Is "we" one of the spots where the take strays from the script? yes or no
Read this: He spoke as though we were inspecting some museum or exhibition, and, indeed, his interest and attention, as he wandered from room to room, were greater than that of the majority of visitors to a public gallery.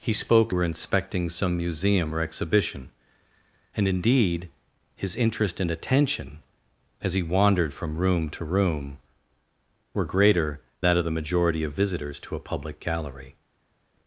yes